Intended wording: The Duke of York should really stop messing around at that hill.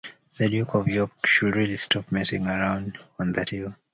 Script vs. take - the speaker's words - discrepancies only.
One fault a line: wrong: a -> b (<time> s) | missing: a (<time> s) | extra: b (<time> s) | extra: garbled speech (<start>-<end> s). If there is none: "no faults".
wrong: at -> on (3.2 s)